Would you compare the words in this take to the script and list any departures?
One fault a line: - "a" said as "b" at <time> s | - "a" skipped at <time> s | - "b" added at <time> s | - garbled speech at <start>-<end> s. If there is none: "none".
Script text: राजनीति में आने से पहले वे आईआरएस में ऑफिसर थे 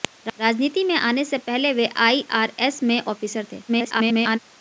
- garbled speech at 3.7-4.4 s